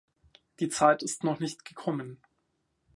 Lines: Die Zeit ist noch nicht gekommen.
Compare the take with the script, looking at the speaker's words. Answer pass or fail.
pass